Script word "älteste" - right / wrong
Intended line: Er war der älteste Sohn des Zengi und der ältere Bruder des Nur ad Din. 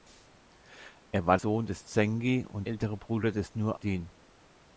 wrong